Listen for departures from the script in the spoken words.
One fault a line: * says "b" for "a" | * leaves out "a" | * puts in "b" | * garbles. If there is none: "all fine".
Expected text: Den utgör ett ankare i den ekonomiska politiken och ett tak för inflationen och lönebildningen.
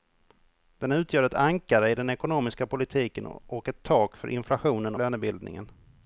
* leaves out "och"